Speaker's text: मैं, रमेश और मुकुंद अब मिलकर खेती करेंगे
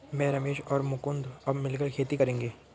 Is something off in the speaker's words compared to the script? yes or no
no